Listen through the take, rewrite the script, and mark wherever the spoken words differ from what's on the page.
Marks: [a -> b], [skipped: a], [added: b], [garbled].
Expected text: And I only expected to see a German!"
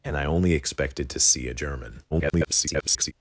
And I only expected to see a German!" [garbled]